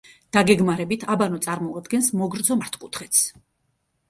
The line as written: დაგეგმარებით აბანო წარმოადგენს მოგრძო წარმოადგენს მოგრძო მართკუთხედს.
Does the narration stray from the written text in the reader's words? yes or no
yes